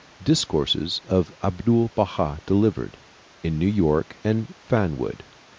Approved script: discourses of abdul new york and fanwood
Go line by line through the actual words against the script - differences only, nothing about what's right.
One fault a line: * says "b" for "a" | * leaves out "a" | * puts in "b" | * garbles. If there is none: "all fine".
* puts in "baha delivered in"